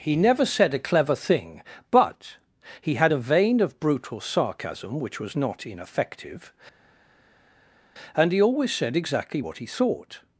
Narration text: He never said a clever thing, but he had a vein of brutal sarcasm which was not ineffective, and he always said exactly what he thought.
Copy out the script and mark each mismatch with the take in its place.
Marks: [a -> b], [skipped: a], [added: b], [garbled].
He never said a clever thing, but he had a vein of brutal sarcasm which was not ineffective, and he always said exactly what he thought.